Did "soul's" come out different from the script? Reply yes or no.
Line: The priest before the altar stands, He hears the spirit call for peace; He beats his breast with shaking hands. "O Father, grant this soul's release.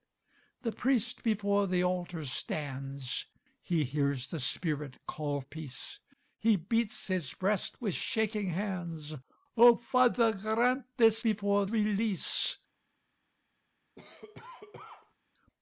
yes